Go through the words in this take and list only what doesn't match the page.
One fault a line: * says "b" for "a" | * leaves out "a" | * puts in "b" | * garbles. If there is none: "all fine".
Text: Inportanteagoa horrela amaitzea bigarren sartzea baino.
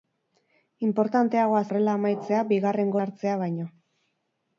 all fine